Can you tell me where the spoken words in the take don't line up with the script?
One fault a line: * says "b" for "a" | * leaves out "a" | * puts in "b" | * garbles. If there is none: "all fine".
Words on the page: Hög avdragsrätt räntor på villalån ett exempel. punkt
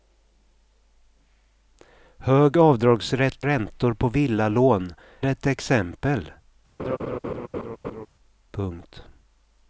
all fine